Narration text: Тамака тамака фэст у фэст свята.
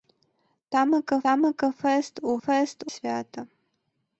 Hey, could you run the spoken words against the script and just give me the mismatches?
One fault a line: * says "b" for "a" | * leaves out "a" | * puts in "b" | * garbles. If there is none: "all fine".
all fine